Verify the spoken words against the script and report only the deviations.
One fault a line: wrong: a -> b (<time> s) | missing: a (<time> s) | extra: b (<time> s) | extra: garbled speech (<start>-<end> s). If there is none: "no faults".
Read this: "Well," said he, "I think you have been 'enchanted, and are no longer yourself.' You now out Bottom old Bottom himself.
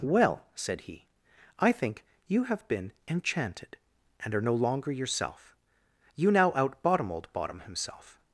no faults